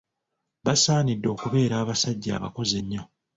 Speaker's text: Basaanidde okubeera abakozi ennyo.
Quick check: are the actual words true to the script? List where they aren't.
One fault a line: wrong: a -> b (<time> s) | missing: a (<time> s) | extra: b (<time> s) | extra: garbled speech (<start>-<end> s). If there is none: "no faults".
extra: abasajja (1.8 s)